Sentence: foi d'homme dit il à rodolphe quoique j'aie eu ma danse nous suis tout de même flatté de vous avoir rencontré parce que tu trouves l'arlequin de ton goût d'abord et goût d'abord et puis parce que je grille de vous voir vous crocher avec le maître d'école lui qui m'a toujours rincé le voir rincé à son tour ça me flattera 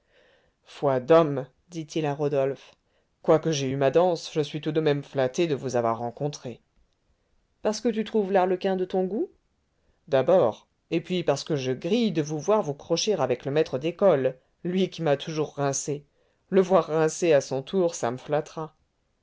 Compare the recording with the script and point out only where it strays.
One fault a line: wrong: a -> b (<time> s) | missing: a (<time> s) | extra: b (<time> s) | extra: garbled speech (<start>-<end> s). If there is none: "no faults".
wrong: nous -> je (4.3 s)
missing: goût d'abord et (11.0 s)